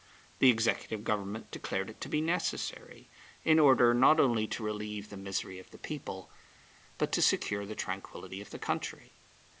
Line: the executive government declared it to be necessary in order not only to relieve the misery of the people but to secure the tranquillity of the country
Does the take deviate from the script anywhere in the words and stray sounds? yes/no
no